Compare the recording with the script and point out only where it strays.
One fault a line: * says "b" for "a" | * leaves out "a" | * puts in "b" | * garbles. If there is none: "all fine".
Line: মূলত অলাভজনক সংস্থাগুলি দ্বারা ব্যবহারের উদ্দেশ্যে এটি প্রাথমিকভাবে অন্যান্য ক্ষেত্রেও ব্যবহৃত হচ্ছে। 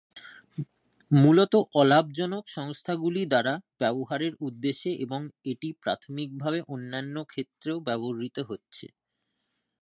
* puts in "এবং"